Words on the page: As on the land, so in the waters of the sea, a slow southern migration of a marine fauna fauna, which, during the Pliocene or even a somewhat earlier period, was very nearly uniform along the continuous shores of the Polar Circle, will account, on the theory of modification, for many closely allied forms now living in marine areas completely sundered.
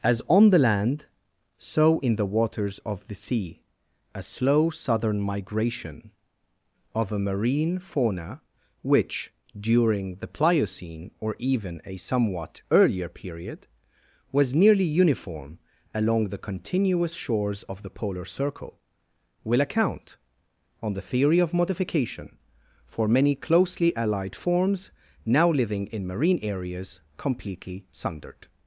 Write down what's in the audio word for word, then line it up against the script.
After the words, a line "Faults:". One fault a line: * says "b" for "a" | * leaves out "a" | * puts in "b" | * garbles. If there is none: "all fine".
As on the land, so in the waters of the sea, a slow southern migration of a marine fauna, which, during the Pliocene or even a somewhat earlier period, was nearly uniform along the continuous shores of the Polar Circle, will account, on the theory of modification, for many closely allied forms now living in marine areas completely sundered.
Faults:
* leaves out "fauna"
* leaves out "very"